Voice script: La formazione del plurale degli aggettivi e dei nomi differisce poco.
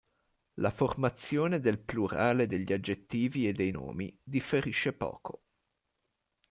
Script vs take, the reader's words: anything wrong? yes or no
no